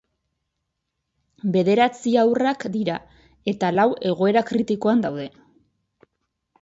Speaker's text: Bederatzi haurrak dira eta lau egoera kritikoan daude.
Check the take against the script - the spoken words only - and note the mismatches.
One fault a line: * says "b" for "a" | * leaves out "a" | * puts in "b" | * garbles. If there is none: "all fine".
all fine